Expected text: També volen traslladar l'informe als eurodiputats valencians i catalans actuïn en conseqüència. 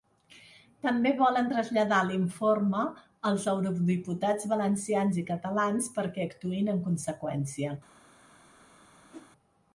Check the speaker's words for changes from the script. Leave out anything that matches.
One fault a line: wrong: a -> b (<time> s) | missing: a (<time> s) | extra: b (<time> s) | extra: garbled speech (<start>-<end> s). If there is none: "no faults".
extra: perquè (6.0 s)